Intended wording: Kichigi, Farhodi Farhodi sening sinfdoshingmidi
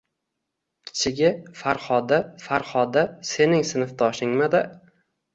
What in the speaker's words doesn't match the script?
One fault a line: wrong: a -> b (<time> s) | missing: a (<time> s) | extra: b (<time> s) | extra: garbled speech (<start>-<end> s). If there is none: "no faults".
no faults